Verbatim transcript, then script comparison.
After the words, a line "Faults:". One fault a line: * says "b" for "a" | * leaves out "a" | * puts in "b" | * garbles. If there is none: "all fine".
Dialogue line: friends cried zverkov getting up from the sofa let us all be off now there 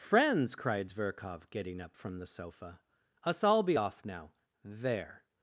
friends cried zverkov getting up from the sofa us all be off now there
Faults:
* leaves out "let"